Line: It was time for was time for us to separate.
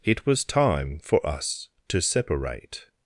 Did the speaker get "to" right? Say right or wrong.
right